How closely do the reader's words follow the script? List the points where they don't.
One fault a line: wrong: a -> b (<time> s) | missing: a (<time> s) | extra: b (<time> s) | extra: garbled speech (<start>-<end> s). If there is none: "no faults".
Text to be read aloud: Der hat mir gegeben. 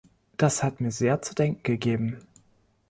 wrong: Der -> Das (0.3 s)
extra: sehr zu denken (0.9 s)